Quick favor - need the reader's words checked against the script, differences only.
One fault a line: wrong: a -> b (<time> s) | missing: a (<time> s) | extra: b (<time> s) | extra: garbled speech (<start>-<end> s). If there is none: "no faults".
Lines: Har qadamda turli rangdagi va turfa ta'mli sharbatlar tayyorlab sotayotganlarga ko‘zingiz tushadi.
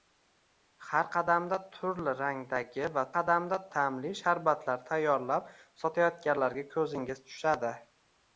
wrong: turfa -> qadamda (3.1 s)